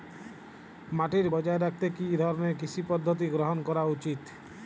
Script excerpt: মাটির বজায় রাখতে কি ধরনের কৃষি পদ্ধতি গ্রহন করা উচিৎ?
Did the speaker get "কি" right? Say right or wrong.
right